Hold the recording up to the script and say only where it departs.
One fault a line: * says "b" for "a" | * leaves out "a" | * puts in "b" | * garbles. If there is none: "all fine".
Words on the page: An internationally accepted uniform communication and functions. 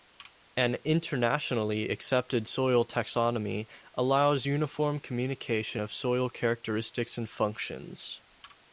* puts in "soil taxonomy allows"
* puts in "of soil characteristics"